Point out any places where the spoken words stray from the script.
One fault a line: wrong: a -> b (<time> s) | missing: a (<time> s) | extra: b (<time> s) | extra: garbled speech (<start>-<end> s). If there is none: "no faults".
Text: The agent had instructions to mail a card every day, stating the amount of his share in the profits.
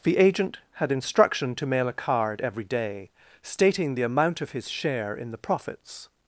wrong: instructions -> instruction (0.9 s)